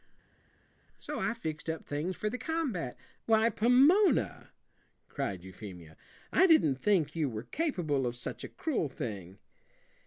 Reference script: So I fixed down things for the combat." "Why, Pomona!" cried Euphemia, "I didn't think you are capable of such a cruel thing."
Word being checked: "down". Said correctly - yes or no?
no